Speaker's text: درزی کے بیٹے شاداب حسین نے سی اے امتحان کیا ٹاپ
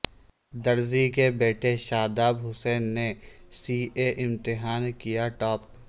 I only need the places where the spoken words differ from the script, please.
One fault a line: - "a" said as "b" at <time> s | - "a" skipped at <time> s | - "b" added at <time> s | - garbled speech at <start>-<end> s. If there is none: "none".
none